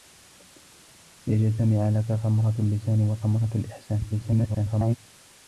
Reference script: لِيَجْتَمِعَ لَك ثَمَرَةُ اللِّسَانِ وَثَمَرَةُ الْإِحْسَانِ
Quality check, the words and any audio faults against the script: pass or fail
fail